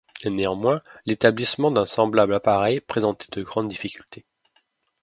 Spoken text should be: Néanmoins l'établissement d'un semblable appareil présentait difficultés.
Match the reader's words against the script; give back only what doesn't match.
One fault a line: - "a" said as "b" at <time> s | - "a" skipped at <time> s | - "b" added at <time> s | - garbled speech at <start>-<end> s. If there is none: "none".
- "de grandes" added at 3.3 s